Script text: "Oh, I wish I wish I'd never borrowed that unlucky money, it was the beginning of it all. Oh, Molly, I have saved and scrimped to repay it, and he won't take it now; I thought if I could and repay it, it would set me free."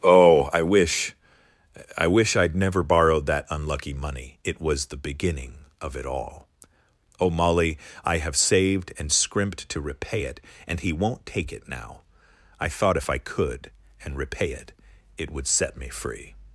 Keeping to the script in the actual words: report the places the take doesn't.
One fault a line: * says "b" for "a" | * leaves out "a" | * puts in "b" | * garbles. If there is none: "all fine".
all fine